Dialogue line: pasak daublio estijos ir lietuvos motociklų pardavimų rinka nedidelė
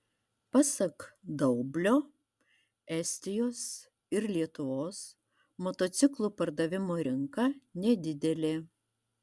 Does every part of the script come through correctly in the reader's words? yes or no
yes